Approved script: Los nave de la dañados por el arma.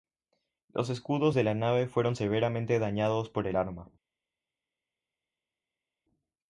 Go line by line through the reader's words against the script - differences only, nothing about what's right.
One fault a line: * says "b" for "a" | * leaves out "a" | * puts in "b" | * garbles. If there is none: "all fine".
* says "escudos" for "nave"
* puts in "nave fueron severamente"